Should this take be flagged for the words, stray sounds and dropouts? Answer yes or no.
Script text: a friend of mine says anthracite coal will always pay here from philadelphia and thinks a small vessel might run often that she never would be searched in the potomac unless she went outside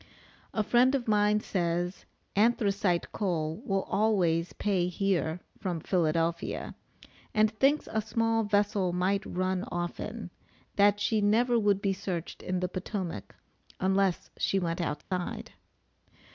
yes